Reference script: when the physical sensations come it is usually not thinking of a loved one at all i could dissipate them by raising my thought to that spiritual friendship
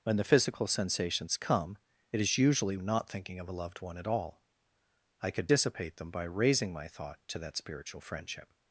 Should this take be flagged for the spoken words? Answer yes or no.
no